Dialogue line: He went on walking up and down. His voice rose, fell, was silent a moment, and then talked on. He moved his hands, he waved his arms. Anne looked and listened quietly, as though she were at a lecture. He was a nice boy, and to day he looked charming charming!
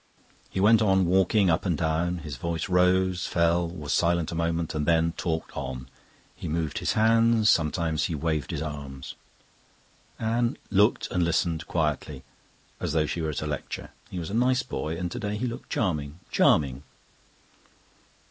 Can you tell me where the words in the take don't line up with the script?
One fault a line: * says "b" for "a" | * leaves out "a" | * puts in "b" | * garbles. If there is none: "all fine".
* puts in "sometimes"